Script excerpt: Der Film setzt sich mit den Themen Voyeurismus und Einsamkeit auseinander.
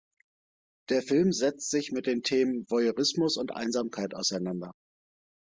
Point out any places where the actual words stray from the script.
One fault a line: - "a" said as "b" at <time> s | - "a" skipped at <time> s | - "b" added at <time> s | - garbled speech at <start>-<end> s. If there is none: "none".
none